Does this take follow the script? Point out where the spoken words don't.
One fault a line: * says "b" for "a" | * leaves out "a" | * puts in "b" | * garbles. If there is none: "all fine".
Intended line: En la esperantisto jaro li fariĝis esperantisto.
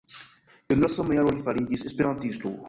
* says "sama" for "esperantisto"